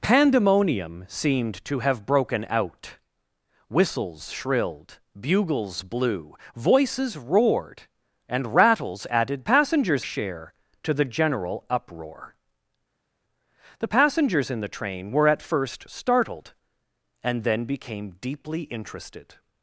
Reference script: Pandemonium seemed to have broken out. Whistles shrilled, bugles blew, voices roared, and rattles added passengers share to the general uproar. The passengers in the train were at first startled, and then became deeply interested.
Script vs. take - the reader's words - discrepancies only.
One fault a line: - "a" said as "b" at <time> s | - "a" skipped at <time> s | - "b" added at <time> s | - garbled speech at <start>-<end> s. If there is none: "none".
none